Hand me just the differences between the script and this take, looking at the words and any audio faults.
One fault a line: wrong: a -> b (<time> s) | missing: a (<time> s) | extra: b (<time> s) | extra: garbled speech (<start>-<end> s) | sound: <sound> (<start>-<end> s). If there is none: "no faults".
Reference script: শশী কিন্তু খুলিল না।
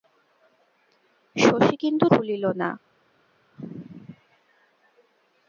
no faults